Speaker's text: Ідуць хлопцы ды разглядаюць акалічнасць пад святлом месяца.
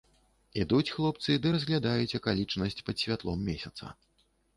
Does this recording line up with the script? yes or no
yes